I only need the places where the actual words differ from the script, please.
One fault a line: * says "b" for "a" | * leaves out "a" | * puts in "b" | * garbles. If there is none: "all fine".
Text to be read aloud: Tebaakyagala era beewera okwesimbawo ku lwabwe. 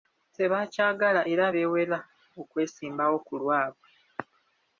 all fine